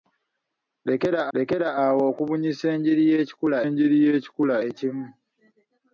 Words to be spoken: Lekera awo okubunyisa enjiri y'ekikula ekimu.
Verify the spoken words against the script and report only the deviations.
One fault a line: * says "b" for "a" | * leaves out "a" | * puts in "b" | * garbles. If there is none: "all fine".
* puts in "lekera"
* puts in "enjiri y'ekikula"